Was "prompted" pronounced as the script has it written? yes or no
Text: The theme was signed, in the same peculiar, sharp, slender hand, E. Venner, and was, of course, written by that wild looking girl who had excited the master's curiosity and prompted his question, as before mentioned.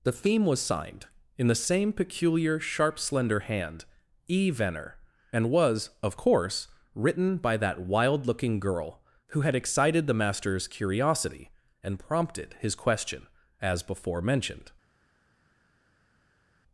yes